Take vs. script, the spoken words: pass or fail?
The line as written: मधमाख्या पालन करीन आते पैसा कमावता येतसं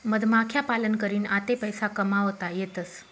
pass